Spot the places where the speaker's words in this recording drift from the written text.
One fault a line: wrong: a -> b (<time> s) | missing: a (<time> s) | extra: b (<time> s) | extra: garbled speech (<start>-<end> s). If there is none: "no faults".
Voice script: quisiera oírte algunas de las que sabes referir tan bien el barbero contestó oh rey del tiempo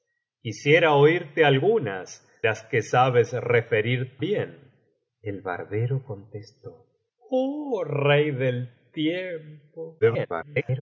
missing: de (2.3 s)
missing: tan (4.2 s)
extra: garbled speech (10.0-10.8 s)